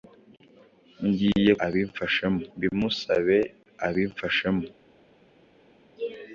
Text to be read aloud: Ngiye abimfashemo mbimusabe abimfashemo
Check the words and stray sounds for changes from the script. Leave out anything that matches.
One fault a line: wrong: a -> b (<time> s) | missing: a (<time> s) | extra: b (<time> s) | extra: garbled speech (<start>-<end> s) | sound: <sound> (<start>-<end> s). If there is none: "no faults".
no faults